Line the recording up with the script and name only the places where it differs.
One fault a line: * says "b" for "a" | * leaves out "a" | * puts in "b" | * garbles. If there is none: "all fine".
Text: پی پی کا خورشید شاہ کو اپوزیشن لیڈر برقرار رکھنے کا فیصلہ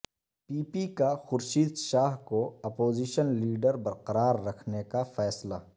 all fine